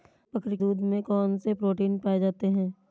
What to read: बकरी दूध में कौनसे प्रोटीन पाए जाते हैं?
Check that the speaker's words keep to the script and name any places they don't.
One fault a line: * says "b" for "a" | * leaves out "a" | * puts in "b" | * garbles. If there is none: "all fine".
all fine